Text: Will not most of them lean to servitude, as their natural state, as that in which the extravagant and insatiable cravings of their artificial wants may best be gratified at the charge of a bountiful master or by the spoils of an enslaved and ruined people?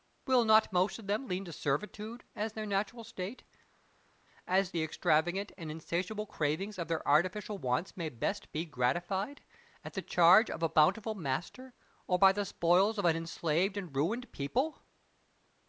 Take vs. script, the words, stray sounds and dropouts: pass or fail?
fail